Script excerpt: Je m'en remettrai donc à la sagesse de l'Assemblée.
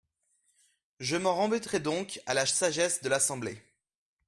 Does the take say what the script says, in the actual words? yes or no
yes